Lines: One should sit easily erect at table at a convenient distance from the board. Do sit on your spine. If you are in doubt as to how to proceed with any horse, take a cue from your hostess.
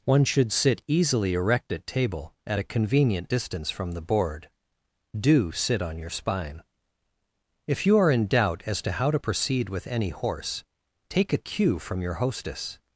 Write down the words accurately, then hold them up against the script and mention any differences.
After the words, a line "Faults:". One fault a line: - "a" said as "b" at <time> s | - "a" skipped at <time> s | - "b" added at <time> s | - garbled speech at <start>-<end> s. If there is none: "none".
One should sit easily erect at table at a convenient distance from the board. Do sit on your spine. If you are in doubt as to how to proceed with any horse, take a cue from your hostess.
Faults:
none